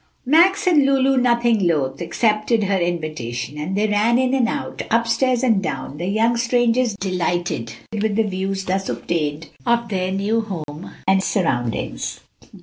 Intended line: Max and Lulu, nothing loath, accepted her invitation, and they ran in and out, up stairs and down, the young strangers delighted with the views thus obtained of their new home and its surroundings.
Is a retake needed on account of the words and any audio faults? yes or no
yes